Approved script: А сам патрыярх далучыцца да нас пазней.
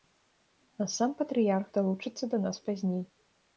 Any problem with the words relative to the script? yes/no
no